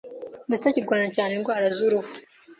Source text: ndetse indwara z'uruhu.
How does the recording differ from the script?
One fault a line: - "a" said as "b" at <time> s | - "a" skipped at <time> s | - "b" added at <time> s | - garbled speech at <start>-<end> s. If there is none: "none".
- "kirwanya cyane" added at 0.7 s